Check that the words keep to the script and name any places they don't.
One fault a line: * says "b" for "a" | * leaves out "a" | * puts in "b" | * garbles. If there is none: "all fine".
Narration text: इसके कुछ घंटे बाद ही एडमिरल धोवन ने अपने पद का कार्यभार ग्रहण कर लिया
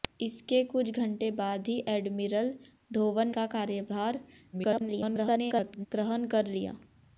* leaves out "ने अपने पद"
* garbles